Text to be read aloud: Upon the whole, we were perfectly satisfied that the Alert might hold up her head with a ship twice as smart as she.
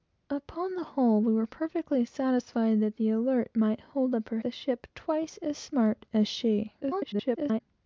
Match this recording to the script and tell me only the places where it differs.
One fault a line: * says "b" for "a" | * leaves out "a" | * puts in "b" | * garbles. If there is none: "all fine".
* leaves out "head with"
* garbles